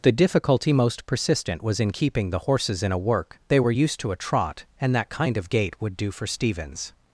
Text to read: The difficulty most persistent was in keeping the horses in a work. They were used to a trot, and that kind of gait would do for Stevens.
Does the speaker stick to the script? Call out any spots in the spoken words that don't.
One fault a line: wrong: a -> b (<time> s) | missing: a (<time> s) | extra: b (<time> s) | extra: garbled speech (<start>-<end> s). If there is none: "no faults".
no faults